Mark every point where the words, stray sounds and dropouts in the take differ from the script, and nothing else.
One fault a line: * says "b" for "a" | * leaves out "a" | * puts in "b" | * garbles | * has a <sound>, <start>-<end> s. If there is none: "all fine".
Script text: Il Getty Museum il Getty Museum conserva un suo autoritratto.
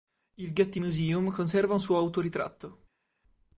* leaves out "il Getty Museum"